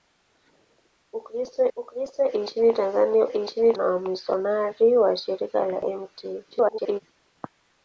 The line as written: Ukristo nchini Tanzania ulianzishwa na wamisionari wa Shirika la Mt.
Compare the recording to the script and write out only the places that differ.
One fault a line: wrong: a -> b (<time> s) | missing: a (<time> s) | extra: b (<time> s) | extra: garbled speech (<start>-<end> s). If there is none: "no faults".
extra: ukristo (1.8 s)
wrong: ulianzishwa -> nchini (3.3 s)
extra: garbled speech (6.5-7.0 s)